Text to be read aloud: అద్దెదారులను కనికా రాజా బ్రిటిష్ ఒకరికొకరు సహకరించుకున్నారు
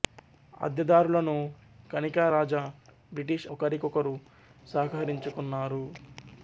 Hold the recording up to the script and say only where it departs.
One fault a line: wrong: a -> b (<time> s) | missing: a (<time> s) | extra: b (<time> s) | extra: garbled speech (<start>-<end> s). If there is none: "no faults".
no faults